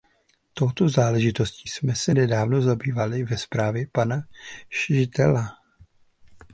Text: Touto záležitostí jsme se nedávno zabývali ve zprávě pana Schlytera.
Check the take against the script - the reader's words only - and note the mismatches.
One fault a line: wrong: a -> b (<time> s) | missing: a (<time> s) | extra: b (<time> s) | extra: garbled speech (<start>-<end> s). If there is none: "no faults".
no faults